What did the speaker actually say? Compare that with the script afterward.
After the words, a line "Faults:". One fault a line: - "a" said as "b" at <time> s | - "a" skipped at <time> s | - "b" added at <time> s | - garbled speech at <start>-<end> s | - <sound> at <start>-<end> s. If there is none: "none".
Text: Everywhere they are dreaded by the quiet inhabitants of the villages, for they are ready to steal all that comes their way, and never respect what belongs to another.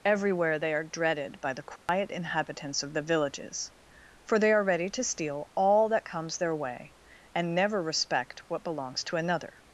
Everywhere they are dreaded by the quiet inhabitants of the villages, for they are ready to steal all that comes their way, and never respect what belongs to another.
Faults:
- dropout at 1.8-1.9 s